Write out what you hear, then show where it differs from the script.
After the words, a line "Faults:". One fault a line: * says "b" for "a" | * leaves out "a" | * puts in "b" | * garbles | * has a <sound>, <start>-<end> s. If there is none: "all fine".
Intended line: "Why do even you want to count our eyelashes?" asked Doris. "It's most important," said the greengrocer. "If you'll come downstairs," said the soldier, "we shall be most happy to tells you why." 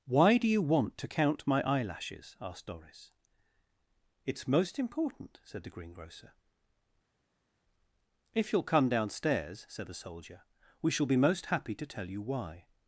"Why do you want to count my eyelashes?" asked Doris. "It's most important," said the greengrocer. "If you'll come downstairs," said the soldier, "we shall be most happy to tell you why."
Faults:
* leaves out "even"
* says "my" for "our"
* says "tell" for "tells"